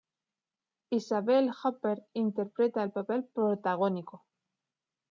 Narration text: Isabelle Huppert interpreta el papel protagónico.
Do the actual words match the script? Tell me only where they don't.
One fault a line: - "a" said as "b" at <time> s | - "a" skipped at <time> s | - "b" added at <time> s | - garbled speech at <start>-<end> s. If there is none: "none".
none